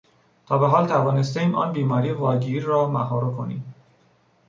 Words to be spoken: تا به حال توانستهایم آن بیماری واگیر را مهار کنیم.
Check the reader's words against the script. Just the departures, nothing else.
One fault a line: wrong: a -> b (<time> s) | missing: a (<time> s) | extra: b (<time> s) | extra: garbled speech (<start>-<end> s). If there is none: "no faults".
no faults